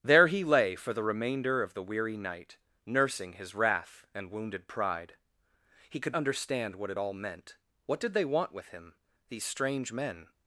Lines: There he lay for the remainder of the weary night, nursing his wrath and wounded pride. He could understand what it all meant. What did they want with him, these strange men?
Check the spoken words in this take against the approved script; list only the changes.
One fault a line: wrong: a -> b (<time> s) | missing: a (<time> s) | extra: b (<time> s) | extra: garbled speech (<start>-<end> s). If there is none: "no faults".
no faults